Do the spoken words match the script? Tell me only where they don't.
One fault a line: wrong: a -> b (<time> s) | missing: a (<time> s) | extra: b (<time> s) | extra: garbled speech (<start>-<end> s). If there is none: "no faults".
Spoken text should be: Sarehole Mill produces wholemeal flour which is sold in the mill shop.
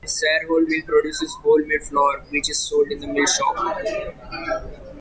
no faults